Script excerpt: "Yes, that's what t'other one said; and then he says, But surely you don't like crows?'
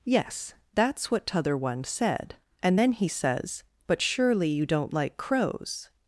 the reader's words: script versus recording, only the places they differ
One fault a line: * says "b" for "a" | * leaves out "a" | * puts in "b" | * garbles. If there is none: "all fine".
all fine